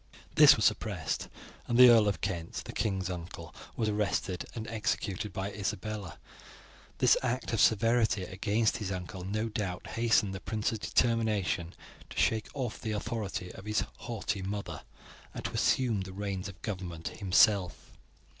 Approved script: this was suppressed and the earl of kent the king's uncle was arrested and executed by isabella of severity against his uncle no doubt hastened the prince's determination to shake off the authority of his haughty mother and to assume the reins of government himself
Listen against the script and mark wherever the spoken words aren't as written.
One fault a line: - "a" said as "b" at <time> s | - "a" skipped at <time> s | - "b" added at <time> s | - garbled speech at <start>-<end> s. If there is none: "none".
- "this act" added at 7.0 s